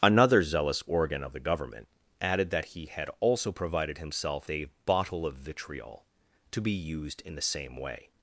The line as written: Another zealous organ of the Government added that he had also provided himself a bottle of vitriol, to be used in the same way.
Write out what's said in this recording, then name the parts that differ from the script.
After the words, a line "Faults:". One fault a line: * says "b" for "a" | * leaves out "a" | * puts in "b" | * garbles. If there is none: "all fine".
Another zealous organ of the Government added that he had also provided himself a bottle of vitriol, to be used in the same way.
Faults:
all fine